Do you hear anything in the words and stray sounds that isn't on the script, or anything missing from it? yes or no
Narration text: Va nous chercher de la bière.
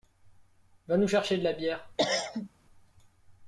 yes